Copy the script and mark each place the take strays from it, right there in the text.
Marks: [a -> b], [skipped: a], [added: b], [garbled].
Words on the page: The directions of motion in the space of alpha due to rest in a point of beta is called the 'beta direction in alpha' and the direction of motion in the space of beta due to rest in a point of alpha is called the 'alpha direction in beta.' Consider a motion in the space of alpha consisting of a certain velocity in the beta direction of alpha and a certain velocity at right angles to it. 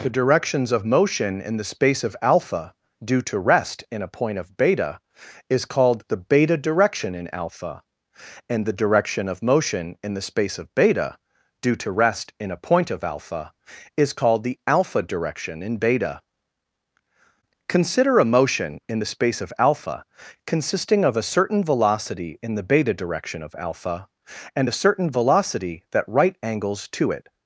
The directions of motion in the space of alpha due to rest in a point of beta is called the 'beta direction in alpha' and the direction of motion in the space of beta due to rest in a point of alpha is called the 'alpha direction in beta.' Consider a motion in the space of alpha consisting of a certain velocity in the beta direction of alpha and a certain velocity [at -> that] right angles to it.